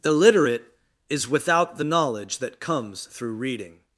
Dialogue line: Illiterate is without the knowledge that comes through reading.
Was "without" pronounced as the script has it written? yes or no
yes